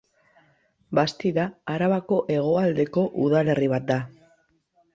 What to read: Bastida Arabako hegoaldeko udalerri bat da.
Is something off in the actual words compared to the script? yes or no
no